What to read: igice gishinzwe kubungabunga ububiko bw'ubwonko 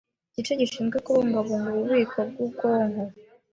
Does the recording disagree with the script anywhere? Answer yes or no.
no